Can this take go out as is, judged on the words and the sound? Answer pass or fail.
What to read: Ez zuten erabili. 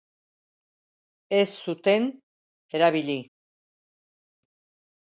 pass